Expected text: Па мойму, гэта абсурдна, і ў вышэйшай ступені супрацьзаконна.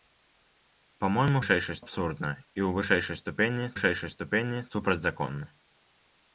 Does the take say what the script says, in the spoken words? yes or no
no